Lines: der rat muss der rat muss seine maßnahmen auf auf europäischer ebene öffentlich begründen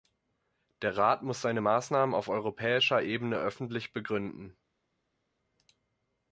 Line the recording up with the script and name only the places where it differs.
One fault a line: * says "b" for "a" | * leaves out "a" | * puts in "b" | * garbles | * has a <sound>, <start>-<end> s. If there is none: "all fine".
* leaves out "der rat muss"
* leaves out "auf"